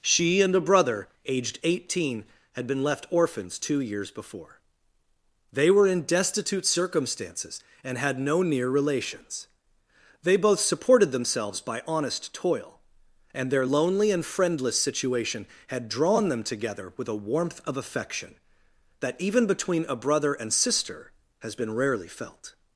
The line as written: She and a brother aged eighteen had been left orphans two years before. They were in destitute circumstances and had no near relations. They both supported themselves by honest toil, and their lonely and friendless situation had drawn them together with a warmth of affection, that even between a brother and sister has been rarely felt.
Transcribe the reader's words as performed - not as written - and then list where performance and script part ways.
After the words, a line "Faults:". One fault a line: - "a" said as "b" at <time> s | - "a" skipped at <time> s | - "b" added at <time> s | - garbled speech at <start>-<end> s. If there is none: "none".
She and a brother aged eighteen had been left orphans two years before. They were in destitute circumstances and had no near relations. They both supported themselves by honest toil, and their lonely and friendless situation had drawn them together with a warmth of affection, that even between a brother and sister has been rarely felt.
Faults:
none